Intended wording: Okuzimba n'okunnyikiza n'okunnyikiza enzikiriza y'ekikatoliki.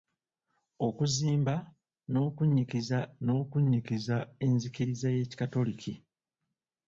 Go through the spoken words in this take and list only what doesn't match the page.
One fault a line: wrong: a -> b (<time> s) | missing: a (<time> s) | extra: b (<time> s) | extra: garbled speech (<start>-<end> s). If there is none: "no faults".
no faults